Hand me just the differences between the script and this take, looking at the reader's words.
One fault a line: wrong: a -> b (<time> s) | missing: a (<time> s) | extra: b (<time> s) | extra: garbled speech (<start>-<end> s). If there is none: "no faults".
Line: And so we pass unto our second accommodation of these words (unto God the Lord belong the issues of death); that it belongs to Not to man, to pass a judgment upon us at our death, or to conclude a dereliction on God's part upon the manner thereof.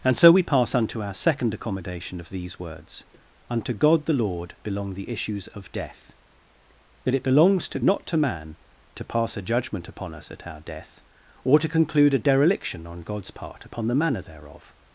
no faults